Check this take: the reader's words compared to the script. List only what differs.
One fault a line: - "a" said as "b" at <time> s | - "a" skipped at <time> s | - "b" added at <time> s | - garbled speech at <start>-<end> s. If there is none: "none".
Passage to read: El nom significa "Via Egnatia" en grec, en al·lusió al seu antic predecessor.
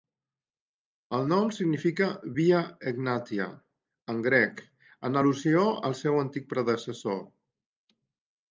none